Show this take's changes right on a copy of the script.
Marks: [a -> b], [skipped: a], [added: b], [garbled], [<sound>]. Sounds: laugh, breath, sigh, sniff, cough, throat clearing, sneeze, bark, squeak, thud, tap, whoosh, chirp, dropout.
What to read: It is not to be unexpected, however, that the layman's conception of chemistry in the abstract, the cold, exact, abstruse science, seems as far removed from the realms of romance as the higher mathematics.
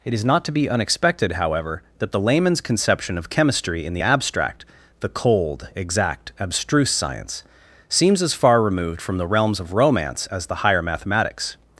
It is not to be unexpected, however, that the layman's conception of chemistry in the abstract, the cold, exact, abstruse science, seems as far removed from the realms of romance as the higher mathematics.